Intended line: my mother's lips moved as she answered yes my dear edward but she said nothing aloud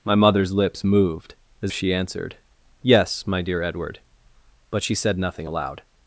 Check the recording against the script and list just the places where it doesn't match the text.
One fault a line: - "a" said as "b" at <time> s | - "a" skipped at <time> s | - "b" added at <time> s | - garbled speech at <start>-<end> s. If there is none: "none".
none